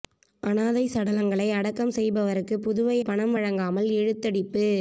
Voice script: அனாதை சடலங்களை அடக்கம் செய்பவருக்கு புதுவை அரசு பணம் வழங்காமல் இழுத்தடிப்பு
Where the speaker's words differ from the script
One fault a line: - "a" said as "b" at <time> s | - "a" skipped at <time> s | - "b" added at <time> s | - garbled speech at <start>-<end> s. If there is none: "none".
- "அரசு" skipped at 3.0 s